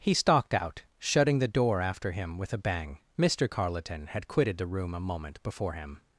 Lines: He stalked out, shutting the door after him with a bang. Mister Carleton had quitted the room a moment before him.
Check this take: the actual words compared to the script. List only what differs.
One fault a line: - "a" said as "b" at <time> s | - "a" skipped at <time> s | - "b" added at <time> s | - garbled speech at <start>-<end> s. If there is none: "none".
none